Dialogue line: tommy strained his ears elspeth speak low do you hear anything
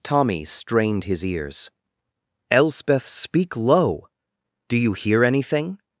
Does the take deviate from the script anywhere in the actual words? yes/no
no